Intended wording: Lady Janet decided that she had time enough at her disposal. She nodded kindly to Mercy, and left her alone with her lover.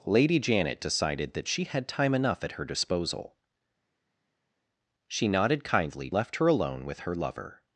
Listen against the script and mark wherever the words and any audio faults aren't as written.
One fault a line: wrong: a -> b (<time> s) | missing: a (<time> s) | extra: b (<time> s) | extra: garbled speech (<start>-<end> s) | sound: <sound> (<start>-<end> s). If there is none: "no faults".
missing: to Mercy and (6.1 s)